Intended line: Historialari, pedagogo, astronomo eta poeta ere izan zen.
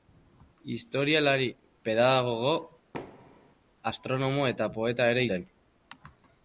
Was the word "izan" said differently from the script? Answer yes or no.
yes